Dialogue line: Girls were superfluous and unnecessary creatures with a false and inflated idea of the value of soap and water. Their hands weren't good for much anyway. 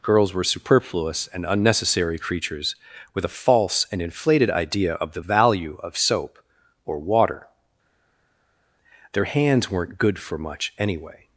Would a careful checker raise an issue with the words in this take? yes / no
yes